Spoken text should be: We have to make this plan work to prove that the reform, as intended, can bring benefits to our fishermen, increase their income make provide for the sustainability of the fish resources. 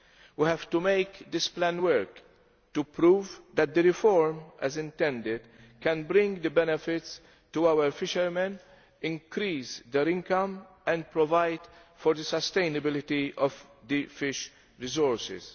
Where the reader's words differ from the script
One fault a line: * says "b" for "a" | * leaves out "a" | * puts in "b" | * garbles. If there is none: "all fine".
* says "and" for "make"